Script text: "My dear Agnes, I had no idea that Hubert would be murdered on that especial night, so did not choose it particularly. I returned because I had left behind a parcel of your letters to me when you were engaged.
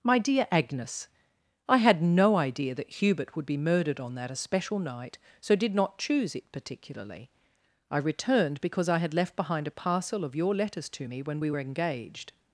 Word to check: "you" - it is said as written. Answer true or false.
false